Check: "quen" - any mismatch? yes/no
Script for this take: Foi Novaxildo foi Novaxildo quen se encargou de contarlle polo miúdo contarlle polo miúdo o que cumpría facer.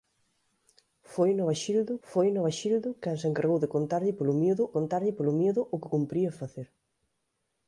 no